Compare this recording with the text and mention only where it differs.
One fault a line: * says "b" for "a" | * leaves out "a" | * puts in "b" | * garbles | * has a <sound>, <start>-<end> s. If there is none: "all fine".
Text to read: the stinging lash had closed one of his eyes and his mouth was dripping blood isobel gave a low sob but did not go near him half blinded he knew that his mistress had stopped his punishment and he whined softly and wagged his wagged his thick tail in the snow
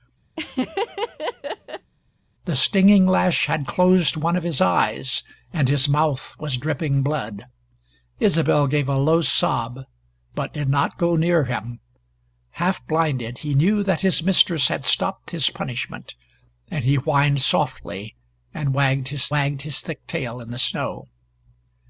* has a laugh, 0.4-1.9 s